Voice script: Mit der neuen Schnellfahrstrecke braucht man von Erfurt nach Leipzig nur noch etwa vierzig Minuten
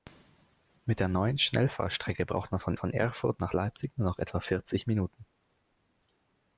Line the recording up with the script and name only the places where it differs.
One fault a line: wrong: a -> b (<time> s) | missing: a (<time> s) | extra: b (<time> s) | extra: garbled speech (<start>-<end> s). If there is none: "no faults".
extra: von (2.8 s)